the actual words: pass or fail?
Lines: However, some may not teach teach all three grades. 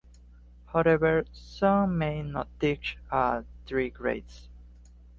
fail